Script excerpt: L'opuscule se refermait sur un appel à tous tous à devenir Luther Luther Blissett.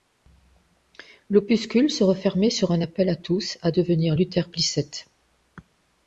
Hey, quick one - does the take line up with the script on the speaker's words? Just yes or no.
no